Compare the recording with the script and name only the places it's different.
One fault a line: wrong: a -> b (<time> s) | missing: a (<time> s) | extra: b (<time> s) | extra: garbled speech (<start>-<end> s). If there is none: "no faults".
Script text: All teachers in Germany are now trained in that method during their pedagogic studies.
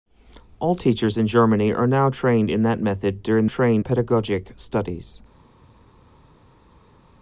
wrong: their -> trained (3.4 s)